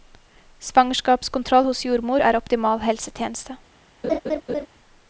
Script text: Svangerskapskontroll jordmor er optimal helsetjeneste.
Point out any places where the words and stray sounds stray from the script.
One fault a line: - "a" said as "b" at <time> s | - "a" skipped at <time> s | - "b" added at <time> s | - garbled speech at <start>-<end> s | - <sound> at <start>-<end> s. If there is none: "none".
- "hos" added at 1.6 s
- laugh at 4.0-4.7 s